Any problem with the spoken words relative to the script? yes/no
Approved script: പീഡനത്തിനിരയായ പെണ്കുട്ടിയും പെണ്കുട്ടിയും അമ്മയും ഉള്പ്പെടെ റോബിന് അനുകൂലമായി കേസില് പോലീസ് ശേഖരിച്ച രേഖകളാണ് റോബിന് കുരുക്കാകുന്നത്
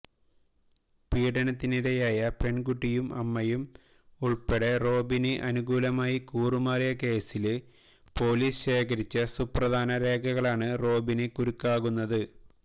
yes